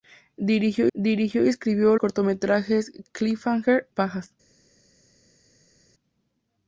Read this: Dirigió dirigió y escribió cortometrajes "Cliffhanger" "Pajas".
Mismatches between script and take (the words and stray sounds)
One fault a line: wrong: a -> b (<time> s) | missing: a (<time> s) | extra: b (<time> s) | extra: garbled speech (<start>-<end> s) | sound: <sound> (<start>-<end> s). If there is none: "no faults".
no faults